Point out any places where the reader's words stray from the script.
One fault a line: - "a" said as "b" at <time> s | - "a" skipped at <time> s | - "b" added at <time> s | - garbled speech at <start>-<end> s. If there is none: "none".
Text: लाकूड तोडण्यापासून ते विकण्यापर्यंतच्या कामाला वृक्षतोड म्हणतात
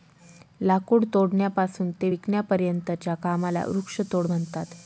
none